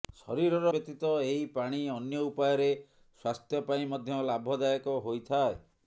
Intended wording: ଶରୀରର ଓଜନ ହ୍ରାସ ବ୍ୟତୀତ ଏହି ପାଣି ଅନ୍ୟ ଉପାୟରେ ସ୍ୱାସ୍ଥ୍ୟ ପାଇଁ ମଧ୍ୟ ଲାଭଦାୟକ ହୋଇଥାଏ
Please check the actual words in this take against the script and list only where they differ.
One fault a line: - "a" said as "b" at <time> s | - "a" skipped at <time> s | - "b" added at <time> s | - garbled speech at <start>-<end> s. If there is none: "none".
- "ଓଜନ ହ୍ରାସ" skipped at 0.7 s